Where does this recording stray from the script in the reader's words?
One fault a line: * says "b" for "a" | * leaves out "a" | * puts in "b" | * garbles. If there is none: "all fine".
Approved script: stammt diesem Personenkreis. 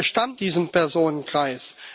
all fine